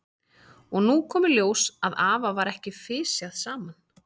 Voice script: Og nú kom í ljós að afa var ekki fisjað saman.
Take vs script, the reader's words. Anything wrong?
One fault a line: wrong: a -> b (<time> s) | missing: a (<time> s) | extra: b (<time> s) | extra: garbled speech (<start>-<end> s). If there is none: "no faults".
no faults